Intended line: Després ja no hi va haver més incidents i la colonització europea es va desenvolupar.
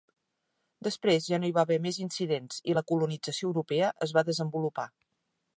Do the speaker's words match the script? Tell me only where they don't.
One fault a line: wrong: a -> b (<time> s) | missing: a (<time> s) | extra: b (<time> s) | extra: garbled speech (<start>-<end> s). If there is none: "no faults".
no faults